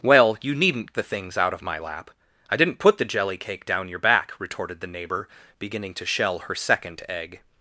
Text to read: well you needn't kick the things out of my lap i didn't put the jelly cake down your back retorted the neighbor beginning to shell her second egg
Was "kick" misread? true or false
true